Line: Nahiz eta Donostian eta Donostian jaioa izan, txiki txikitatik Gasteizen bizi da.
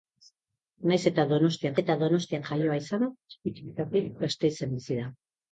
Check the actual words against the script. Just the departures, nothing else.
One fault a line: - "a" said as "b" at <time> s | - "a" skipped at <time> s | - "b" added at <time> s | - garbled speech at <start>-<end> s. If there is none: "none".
none